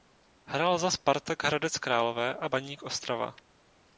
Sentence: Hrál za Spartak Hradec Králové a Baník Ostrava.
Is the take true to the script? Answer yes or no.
yes